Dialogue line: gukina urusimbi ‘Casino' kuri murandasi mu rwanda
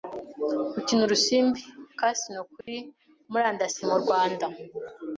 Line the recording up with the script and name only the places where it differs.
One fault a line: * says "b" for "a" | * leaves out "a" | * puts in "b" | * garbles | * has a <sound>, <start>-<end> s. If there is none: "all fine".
* has a dropout, 2.6-2.7 s